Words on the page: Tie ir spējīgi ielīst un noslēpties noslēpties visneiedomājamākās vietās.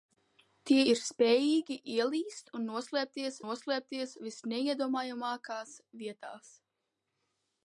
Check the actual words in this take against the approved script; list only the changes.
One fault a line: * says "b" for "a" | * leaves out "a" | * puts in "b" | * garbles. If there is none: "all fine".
all fine